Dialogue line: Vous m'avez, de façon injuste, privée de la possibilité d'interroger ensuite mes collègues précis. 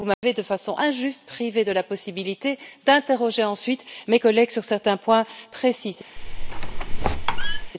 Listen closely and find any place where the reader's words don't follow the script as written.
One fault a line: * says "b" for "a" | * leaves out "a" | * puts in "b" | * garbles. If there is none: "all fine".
* puts in "sur certains points"